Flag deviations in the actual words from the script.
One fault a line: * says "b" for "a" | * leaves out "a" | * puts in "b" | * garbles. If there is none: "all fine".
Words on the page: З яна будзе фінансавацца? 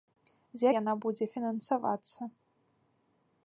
all fine